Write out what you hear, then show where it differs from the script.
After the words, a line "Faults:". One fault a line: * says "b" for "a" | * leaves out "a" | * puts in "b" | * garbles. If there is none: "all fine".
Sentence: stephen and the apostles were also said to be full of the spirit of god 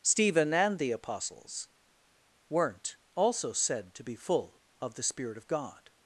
stephen and the apostles weren't also said to be full of the spirit of god
Faults:
* says "weren't" for "were"